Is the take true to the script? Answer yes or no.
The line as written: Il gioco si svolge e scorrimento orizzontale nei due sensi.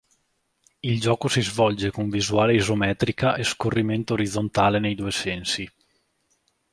no